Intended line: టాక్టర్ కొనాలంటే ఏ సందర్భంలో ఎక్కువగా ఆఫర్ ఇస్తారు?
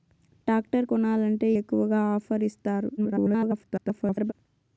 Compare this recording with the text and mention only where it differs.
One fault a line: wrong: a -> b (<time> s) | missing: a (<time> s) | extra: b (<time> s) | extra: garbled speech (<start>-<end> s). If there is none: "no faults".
missing: ఏ సందర్భంలో (1.5 s)
extra: garbled speech (3.0-4.3 s)